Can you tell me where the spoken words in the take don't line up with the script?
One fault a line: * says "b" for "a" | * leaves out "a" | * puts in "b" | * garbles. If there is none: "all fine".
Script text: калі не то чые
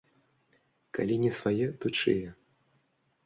* puts in "свае"